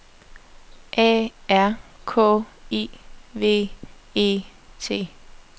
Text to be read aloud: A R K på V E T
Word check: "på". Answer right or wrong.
wrong